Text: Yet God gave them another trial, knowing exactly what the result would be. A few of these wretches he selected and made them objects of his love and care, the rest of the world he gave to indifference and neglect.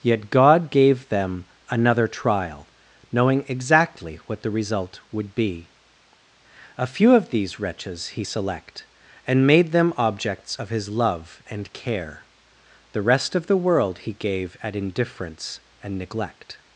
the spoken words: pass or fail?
fail